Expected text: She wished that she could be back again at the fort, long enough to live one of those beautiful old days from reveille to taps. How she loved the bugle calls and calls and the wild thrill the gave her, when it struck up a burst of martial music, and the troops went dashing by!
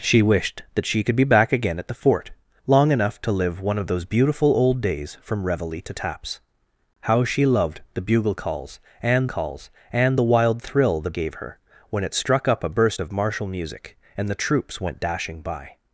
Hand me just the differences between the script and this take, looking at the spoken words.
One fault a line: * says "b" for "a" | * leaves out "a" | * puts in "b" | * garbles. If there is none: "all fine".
all fine